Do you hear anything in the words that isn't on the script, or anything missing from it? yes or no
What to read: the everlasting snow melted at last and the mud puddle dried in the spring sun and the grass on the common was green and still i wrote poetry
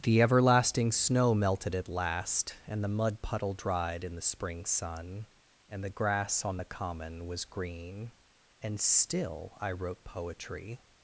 no